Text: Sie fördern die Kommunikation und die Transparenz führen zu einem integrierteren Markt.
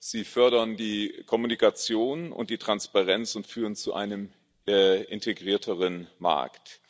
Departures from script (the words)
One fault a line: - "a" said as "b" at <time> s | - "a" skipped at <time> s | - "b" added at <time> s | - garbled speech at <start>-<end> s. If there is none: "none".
- "und" added at 3.4 s